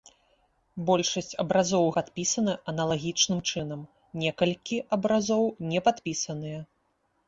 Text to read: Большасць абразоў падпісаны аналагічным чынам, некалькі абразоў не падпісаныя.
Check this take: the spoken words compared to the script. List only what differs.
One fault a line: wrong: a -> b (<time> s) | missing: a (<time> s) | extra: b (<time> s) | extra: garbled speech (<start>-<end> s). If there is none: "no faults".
no faults